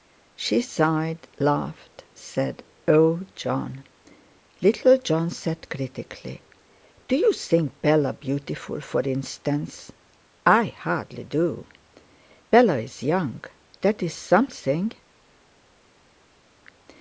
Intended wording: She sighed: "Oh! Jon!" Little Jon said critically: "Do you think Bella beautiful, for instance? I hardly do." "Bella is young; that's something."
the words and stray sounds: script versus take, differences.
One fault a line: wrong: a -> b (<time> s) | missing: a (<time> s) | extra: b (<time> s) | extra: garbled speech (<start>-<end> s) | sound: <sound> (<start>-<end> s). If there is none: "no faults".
extra: laughed said (1.4 s)